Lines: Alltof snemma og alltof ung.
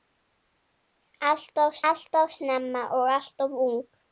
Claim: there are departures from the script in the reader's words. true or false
true